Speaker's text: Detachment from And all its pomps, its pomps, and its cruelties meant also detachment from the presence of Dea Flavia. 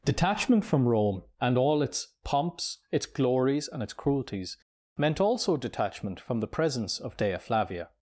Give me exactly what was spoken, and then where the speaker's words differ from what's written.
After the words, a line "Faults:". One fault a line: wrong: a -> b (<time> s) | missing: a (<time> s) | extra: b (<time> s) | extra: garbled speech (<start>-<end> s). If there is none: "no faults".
Detachment from Rome and all its pomps, its glories, and its cruelties meant also detachment from the presence of Dea Flavia.
Faults:
extra: Rome (0.9 s)
wrong: pomps -> glories (3.0 s)